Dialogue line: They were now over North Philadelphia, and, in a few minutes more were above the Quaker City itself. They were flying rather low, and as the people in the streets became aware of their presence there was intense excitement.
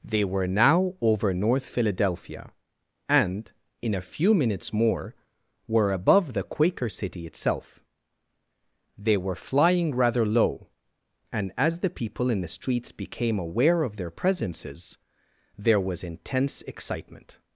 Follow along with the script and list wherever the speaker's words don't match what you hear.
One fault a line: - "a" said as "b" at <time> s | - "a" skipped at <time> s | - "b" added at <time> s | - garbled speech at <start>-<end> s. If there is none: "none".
- "presence" said as "presences" at 14.1 s